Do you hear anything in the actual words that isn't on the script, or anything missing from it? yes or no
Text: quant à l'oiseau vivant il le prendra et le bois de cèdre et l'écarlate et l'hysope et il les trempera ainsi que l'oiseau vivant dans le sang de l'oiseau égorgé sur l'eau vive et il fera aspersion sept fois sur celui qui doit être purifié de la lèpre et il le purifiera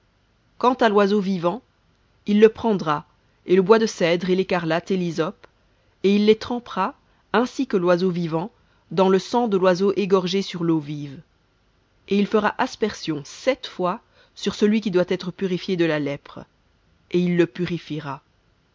no